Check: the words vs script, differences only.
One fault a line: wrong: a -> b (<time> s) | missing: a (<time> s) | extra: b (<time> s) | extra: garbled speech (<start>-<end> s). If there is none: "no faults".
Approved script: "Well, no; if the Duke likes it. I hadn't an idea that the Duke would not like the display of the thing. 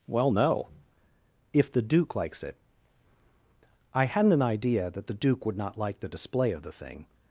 no faults